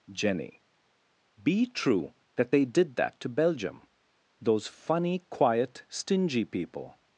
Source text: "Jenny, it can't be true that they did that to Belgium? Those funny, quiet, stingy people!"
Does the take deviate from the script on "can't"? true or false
true